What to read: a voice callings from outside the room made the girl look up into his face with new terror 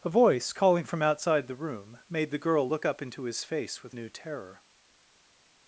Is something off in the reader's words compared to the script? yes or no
yes